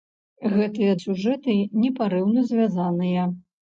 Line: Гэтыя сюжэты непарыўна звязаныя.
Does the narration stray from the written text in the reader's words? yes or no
no